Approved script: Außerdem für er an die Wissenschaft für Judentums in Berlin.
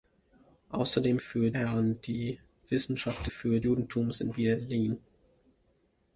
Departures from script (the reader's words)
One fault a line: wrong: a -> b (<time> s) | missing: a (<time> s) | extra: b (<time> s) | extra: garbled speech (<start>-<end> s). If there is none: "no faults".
no faults